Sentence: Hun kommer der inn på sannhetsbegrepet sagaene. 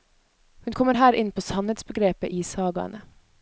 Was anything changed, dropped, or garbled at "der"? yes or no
yes